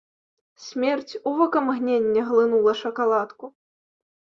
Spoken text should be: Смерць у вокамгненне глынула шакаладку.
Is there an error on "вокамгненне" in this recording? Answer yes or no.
no